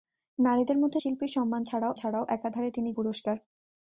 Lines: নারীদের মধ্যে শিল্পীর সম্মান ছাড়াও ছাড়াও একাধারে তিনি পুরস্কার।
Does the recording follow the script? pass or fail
pass